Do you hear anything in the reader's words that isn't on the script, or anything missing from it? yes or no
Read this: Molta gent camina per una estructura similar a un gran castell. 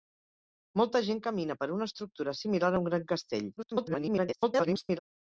yes